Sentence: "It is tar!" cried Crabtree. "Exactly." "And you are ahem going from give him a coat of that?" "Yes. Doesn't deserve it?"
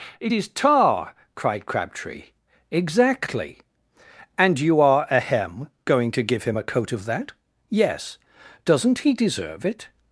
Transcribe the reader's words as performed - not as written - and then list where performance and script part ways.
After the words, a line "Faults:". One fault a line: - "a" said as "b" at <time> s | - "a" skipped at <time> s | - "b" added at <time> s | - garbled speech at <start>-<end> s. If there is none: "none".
"It is tar!" cried Crabtree. "Exactly." "And you are ahem going to give him a coat of that?" "Yes. Doesn't he deserve it?"
Faults:
- "from" said as "to" at 6.1 s
- "he" added at 9.0 s